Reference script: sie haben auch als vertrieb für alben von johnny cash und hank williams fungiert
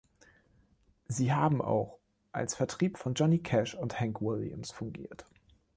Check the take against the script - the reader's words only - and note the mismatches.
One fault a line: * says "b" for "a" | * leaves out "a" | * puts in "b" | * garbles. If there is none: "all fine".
* leaves out "für alben"